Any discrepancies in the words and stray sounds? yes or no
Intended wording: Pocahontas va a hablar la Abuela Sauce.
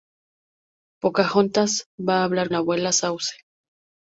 no